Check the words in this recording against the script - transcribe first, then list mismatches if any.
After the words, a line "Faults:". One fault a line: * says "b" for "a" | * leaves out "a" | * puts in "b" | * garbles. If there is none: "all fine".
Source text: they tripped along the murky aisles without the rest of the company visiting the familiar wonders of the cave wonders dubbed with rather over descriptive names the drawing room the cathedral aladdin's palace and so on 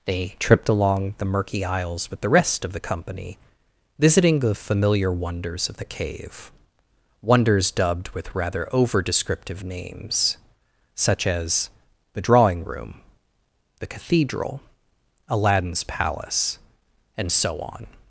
they tripped along the murky aisles with the rest of the company visiting the familiar wonders of the cave wonders dubbed with rather over descriptive names such as the drawing room the cathedral aladdin's palace and so on
Faults:
* says "with" for "without"
* puts in "such as"